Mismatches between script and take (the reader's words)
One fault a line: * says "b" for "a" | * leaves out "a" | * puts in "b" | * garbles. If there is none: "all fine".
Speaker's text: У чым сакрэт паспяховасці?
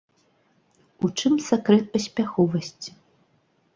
all fine